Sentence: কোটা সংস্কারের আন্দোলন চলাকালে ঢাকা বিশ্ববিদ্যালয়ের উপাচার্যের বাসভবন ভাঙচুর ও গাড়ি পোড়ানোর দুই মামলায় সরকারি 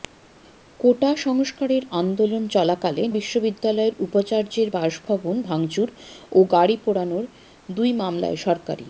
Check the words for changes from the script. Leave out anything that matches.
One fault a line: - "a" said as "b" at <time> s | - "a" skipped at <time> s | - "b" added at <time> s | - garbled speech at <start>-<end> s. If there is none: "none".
- "ঢাকা" skipped at 3.0 s